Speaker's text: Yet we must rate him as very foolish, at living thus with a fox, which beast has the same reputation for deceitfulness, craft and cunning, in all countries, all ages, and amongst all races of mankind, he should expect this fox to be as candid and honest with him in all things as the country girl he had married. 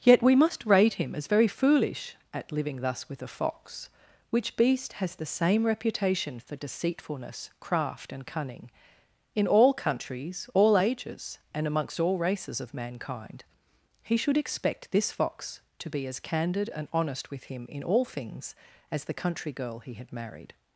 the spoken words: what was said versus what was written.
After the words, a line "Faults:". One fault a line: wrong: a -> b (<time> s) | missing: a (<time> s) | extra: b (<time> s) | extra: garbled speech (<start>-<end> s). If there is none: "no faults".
Yet we must rate him as very foolish, at living thus with a fox, which beast has the same reputation for deceitfulness, craft and cunning, in all countries, all ages, and amongst all races of mankind, he should expect this fox to be as candid and honest with him in all things as the country girl he had married.
Faults:
no faults